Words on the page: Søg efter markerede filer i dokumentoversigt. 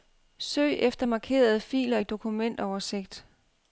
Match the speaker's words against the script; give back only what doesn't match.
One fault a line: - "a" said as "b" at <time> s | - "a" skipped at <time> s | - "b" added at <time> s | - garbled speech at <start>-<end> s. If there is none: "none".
none